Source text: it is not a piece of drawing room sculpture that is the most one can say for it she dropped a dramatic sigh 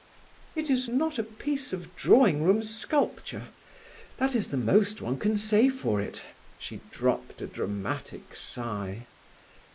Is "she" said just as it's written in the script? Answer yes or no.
yes